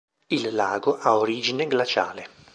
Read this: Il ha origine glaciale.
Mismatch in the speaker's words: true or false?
true